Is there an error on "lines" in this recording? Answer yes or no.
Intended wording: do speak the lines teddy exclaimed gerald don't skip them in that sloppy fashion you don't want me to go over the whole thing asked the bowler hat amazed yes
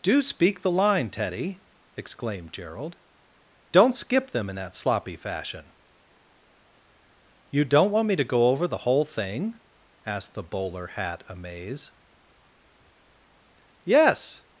yes